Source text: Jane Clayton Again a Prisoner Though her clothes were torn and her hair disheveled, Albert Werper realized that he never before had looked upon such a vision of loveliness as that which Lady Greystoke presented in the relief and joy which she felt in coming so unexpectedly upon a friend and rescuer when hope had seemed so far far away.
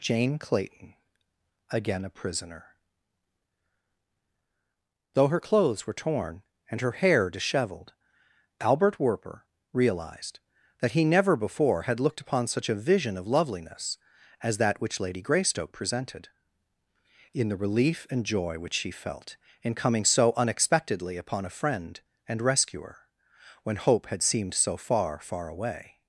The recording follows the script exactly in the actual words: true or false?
true